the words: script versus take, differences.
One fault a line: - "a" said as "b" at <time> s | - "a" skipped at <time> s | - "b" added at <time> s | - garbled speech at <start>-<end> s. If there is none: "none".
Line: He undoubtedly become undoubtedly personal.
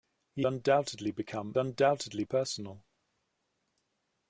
none